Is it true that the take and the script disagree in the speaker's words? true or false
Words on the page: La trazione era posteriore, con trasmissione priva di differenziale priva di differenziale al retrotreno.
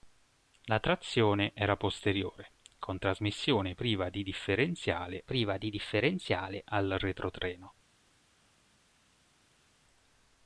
false